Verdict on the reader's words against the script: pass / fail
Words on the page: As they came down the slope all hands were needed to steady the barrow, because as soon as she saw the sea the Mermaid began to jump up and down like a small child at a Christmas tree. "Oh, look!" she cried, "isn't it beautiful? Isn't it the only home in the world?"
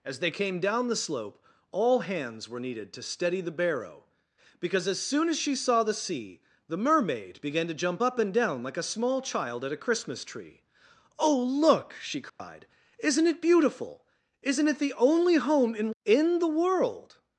fail